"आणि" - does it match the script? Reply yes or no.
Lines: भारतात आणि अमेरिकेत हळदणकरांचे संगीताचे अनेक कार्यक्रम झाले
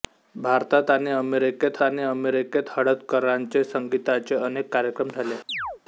yes